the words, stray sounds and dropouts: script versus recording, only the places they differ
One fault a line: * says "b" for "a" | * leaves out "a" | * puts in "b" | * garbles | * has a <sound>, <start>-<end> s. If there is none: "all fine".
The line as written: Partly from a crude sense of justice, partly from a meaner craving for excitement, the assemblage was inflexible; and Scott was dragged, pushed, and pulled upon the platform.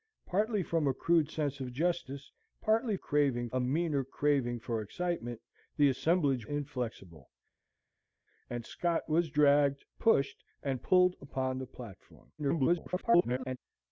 * says "craving" for "from"
* leaves out "was"
* garbles